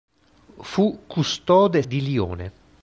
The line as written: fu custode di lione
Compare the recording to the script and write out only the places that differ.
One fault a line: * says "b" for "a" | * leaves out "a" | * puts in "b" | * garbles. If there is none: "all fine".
all fine